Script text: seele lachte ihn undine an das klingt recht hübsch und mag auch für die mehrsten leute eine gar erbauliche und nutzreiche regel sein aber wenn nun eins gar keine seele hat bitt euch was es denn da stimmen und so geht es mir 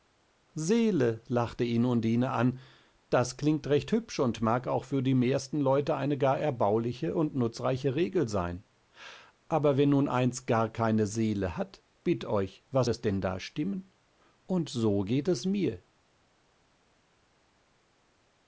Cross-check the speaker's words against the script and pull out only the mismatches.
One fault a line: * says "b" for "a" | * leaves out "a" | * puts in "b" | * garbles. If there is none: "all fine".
all fine